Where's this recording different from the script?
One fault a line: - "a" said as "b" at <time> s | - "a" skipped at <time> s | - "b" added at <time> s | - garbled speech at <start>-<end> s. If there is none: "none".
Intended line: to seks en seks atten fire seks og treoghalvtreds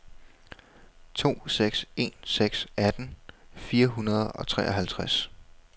- "seks" said as "hundrede" at 3.9 s